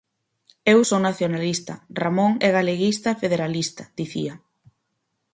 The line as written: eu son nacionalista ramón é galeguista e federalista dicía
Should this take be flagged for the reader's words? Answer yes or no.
no